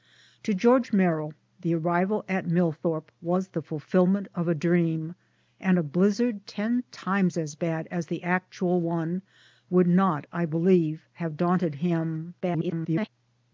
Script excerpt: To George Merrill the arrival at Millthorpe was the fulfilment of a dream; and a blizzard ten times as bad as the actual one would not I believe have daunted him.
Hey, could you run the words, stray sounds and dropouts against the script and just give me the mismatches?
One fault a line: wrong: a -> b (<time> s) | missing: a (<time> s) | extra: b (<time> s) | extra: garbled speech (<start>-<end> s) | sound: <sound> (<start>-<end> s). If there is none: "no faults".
extra: garbled speech (12.4-13.1 s)